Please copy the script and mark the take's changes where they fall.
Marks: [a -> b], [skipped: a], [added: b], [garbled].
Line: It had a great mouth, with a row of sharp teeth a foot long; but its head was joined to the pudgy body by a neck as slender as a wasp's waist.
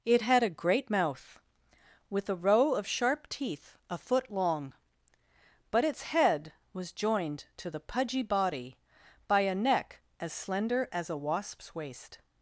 It had a great mouth, with a row of sharp teeth a foot long; but its head was joined to the pudgy body by a neck as slender as a wasp's waist.